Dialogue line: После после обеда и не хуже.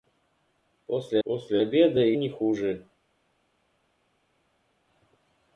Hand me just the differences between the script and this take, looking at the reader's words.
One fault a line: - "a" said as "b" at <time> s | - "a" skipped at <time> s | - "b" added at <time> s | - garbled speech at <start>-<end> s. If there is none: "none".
none